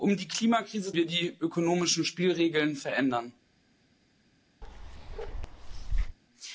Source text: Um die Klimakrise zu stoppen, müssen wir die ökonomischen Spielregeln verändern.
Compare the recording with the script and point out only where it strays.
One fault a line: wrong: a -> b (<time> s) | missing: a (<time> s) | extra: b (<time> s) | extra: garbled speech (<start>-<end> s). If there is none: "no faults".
missing: zu stoppen müssen (0.9 s)